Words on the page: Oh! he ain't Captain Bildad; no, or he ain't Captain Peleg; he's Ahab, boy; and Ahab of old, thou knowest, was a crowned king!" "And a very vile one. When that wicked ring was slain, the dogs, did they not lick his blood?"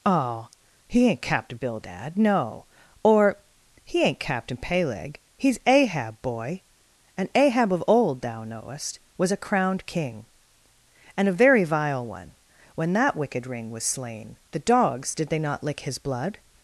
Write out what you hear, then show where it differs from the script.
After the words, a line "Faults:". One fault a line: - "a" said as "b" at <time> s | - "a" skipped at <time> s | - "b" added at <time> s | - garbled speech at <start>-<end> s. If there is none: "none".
Oh! he ain't Captain Bildad; no, or he ain't Captain Peleg; he's Ahab, boy; and Ahab of old, thou knowest, was a crowned king!" "And a very vile one. When that wicked ring was slain, the dogs, did they not lick his blood?"
Faults:
none